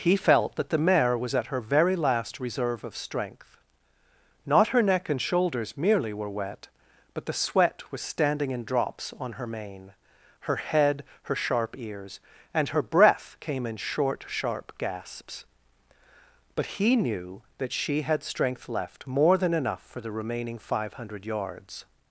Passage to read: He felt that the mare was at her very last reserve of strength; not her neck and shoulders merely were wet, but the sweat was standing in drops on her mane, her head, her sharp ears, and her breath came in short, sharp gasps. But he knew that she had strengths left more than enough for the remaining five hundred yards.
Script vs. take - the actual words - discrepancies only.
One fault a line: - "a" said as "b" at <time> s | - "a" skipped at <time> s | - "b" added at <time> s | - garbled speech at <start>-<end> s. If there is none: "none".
- "strengths" said as "strength" at 18.2 s